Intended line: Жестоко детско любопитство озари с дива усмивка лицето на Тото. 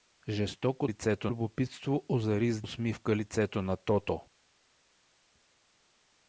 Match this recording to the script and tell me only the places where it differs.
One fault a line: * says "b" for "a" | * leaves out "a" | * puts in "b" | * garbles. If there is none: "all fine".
* says "лицето" for "детско"
* leaves out "дива"